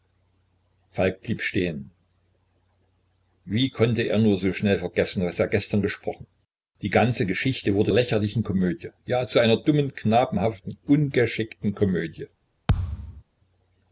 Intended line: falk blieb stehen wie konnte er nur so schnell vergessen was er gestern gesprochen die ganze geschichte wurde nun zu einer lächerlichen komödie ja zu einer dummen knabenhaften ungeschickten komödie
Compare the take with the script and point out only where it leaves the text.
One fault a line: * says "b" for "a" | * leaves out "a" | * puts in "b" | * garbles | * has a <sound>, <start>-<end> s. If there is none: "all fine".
* leaves out "nun zu einer"
* has a thud, 12.7-13.2 s